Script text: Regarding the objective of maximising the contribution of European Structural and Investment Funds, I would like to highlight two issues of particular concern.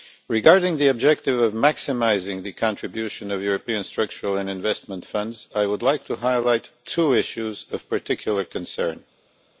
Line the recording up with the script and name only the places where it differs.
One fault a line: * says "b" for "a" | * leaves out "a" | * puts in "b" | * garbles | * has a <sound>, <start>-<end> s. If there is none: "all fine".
all fine